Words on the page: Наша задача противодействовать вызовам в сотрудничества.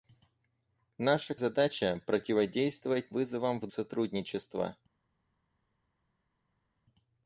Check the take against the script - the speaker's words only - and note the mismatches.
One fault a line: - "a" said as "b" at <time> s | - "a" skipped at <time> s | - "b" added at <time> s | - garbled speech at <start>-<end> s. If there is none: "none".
none